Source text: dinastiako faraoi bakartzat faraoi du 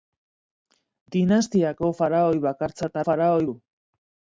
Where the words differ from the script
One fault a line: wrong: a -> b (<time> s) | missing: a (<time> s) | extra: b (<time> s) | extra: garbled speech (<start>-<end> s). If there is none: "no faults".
no faults